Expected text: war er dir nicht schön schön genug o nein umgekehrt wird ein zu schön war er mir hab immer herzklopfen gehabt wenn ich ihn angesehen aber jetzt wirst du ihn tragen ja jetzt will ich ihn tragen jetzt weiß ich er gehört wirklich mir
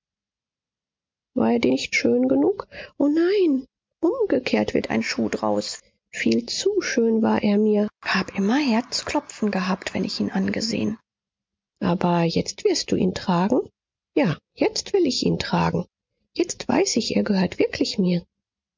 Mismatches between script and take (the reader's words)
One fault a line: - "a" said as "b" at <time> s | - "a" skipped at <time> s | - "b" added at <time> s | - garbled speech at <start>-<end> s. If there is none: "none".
- "schön" skipped at 2.3 s
- "schuh draus viel" added at 5.0 s